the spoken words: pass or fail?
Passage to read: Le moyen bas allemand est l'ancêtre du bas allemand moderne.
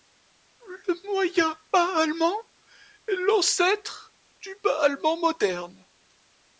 pass